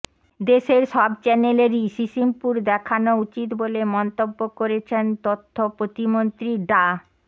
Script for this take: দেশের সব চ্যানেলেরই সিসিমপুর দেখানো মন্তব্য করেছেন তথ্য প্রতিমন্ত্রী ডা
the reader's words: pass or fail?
fail